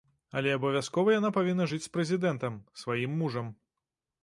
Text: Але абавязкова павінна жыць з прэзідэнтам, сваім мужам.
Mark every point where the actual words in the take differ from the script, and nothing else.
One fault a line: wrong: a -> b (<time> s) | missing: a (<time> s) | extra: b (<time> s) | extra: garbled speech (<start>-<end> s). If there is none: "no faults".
extra: яна (1.2 s)